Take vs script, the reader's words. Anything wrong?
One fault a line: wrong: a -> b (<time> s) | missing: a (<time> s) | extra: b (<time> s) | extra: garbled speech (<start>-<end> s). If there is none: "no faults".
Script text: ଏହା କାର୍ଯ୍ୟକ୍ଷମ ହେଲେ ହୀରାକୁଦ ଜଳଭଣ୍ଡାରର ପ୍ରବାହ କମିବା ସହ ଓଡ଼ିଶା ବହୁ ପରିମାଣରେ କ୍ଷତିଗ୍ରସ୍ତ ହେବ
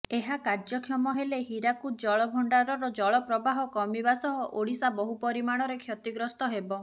extra: ଜଳ (3.0 s)